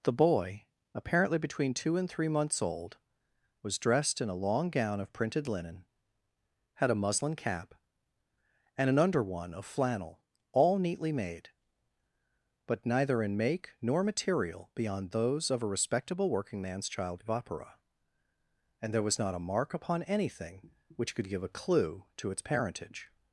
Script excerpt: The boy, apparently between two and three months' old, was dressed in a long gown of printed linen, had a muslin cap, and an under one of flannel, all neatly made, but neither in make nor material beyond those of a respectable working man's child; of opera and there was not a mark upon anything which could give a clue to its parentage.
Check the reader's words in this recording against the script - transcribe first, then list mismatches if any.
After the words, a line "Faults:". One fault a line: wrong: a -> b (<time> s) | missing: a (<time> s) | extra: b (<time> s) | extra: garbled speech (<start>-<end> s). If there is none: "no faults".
The boy, apparently between two and three months' old, was dressed in a long gown of printed linen, had a muslin cap, and an under one of flannel, all neatly made, but neither in make nor material beyond those of a respectable working man's child; of opera and there was not a mark upon anything which could give a clue to its parentage.
Faults:
no faults